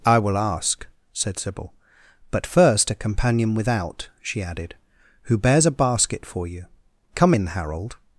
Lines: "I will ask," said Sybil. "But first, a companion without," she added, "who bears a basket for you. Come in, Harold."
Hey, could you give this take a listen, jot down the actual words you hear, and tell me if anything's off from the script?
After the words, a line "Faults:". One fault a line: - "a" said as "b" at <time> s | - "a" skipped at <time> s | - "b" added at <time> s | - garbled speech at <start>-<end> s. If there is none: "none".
"I will ask," said Sybil. "But first, a companion without," she added, "who bears a basket for you. Come in, Harold."
Faults:
none